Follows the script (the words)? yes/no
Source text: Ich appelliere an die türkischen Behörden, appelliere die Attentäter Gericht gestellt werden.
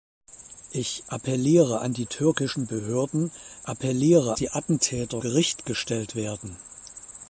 yes